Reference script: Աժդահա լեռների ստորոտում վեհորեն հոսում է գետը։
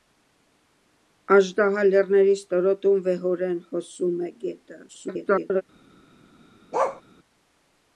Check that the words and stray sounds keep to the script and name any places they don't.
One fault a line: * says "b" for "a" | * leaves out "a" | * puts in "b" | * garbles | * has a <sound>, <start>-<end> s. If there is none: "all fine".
* garbles
* has a bark, 6.7-7.0 s